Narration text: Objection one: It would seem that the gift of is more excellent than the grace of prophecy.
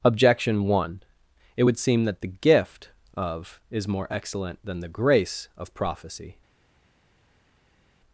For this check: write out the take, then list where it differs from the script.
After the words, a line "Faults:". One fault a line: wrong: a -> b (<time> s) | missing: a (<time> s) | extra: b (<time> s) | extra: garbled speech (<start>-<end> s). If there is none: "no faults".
Objection one: It would seem that the gift of is more excellent than the grace of prophecy.
Faults:
no faults